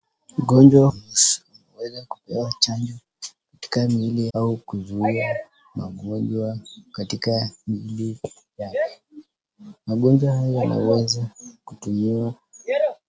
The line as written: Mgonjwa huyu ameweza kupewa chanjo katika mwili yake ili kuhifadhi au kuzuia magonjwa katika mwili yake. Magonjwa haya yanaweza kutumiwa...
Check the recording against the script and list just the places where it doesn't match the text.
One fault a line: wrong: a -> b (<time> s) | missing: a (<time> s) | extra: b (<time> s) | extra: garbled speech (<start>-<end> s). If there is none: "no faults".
missing: huyu (0.9 s)
missing: yake ili kuhifadhi (4.3 s)